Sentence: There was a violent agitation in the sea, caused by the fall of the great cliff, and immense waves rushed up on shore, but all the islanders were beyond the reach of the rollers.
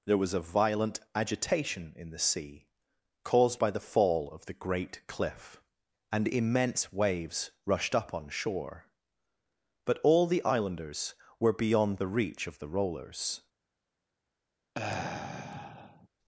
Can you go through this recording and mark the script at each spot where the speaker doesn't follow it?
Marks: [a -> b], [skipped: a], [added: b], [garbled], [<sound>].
There was a violent agitation in the sea, caused by the fall of the great cliff, and immense waves rushed up on shore, but all the islanders were beyond the reach of the rollers. [sigh]